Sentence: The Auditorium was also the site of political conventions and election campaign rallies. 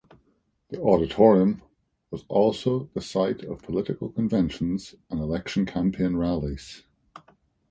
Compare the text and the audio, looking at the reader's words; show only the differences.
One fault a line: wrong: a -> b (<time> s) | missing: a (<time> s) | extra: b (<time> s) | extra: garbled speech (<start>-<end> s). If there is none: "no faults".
no faults